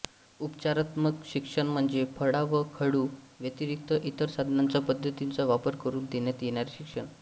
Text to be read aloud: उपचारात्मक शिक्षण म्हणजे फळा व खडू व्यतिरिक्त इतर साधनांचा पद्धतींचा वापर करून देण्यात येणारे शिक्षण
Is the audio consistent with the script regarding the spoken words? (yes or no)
yes